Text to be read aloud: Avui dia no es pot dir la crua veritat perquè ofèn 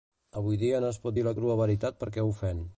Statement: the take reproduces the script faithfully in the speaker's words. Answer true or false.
true